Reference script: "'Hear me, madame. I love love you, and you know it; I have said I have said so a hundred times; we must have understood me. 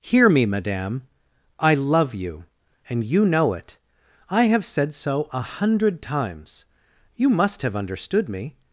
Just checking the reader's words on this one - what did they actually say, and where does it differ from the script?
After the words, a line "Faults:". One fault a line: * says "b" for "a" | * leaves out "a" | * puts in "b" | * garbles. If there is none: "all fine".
"'Hear me, madame. I love you, and you know it; I have said so a hundred times; you must have understood me.
Faults:
* leaves out "love"
* leaves out "I have said"
* says "you" for "we"